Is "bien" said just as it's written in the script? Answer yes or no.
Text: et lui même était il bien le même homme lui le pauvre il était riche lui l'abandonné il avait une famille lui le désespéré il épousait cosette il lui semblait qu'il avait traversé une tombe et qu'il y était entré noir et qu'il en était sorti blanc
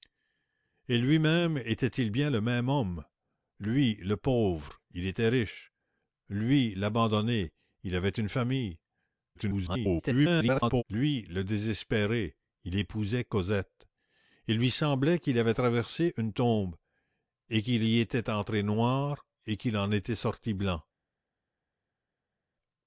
yes